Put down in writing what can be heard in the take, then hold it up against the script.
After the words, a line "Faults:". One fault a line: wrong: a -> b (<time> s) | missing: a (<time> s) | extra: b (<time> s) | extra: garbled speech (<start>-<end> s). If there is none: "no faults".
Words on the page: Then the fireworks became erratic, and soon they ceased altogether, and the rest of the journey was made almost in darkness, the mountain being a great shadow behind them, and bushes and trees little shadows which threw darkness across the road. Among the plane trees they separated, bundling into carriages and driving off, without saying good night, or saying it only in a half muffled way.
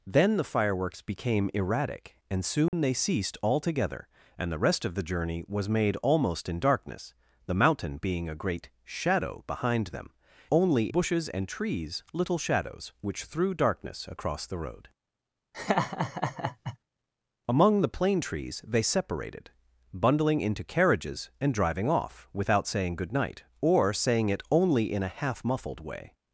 Then the fireworks became erratic, and soon they ceased altogether, and the rest of the journey was made almost in darkness, the mountain being a great shadow behind them, only bushes and trees little shadows which threw darkness across the road. Among the plane trees they separated, bundling into carriages and driving off, without saying good night, or saying it only in a half muffled way.
Faults:
wrong: and -> only (10.5 s)